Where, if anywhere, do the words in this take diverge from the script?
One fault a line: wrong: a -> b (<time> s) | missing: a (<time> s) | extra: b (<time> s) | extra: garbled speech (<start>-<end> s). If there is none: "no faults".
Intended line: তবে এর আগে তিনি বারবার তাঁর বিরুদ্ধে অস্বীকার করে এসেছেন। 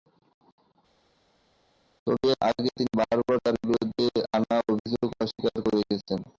extra: আনা অভিযোগ (4.3 s)